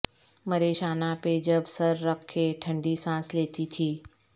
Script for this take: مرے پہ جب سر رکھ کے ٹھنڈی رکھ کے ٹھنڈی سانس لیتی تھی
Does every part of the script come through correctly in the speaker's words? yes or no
no